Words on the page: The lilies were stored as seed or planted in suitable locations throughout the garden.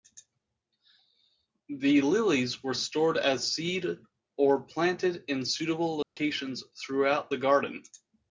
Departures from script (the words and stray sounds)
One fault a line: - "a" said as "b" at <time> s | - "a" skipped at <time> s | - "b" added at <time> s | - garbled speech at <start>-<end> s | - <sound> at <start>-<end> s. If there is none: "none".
- dropout at 6.0-6.2 s